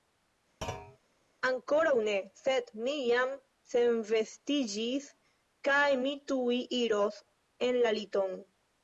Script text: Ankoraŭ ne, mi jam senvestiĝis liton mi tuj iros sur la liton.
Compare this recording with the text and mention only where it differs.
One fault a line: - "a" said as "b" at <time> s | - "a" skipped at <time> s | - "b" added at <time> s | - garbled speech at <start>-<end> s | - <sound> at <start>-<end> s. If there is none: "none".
- thud at 0.6-1.0 s
- "sed" added at 2.4 s
- "liton" said as "kaj" at 5.7 s
- "sur" said as "en" at 7.7 s